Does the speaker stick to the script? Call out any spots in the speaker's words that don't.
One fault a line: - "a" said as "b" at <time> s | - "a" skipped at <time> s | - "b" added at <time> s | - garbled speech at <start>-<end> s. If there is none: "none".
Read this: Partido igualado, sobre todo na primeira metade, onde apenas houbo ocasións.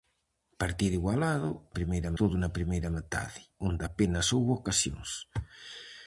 - "sobre" said as "primeira" at 1.8 s